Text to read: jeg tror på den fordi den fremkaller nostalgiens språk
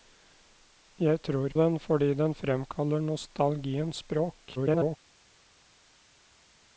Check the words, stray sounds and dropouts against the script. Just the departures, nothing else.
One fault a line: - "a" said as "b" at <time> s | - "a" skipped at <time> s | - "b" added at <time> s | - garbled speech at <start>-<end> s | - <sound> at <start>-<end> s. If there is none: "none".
- "på" skipped at 1.5 s
- garbled speech at 4.6-5.0 s